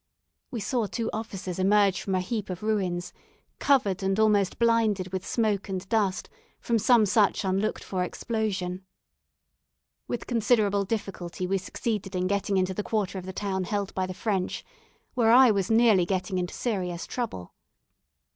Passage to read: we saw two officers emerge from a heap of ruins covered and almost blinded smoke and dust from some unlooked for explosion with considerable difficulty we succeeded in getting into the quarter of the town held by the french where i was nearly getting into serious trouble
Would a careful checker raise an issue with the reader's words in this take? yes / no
yes